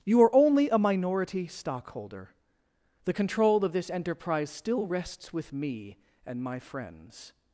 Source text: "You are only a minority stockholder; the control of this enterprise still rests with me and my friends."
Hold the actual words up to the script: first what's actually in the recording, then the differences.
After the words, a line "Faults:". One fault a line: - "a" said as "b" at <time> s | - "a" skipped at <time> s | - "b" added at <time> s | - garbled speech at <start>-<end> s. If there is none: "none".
"You are only a minority stockholder; the control of this enterprise still rests with me and my friends."
Faults:
none